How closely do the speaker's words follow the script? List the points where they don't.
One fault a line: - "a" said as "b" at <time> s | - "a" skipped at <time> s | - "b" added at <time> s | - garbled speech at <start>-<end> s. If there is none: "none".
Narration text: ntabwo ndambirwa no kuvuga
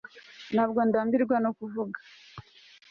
none